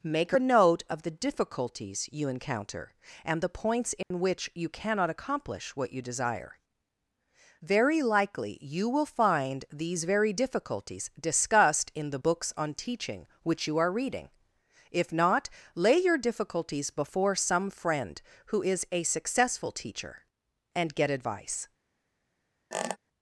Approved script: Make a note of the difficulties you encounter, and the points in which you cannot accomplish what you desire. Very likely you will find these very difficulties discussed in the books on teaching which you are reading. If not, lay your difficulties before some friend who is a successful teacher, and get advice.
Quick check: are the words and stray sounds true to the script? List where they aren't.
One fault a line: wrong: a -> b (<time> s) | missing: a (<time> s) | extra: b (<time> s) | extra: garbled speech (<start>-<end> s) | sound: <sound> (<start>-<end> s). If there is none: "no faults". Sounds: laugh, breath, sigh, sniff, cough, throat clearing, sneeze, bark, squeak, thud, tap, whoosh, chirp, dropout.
sound: dropout (4.0-4.1 s)
sound: squeak (22.7-23.0 s)